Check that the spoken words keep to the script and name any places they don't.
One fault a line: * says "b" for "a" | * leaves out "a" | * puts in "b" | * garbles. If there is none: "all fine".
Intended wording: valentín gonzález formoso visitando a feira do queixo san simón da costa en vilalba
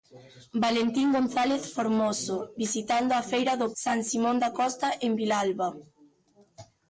* leaves out "queixo"